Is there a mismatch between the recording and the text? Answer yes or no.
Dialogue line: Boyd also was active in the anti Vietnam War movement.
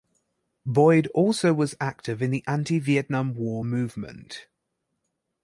no